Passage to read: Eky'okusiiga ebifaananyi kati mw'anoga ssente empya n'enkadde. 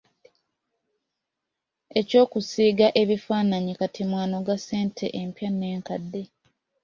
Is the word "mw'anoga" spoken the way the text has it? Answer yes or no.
yes